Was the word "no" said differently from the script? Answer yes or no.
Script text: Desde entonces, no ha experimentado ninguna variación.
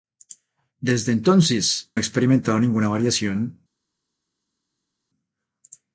yes